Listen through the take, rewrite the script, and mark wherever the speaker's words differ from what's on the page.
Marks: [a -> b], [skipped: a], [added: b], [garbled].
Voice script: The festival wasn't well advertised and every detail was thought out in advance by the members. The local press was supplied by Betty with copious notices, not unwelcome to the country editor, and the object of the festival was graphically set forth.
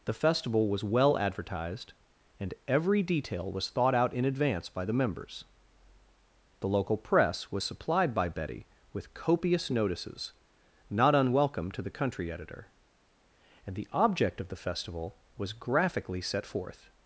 The festival [wasn't -> was] well advertised and every detail was thought out in advance by the members. The local press was supplied by Betty with copious notices, not unwelcome to the country editor, and the object of the festival was graphically set forth.